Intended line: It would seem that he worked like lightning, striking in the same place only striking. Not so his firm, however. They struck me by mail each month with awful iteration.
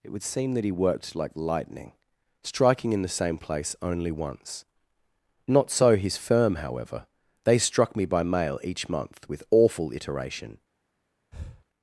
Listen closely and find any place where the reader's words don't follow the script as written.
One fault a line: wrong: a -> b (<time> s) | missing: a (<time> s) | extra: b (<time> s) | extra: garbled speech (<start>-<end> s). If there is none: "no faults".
wrong: striking -> once (4.1 s)